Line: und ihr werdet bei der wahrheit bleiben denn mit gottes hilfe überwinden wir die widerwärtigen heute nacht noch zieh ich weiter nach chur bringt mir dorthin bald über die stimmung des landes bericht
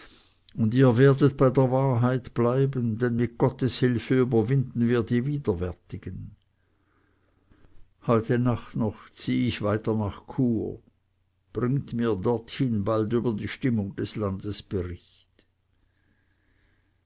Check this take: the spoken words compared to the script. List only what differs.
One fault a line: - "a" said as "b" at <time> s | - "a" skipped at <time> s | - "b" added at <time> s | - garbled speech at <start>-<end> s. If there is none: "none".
none